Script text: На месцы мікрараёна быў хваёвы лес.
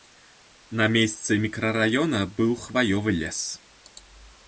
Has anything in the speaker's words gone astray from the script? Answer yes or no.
no